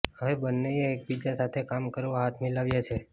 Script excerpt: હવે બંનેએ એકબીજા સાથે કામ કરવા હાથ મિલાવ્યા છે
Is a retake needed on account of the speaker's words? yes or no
no